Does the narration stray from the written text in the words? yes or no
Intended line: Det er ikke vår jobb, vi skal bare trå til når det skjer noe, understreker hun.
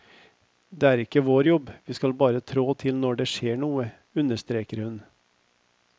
no